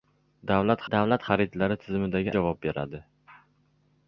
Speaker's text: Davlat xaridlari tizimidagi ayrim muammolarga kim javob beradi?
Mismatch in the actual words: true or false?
true